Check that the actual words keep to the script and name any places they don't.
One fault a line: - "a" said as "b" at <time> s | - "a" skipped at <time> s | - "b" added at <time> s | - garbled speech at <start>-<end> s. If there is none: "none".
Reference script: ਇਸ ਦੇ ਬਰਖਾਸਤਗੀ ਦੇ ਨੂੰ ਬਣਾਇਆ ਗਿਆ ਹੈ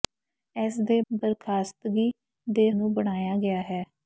none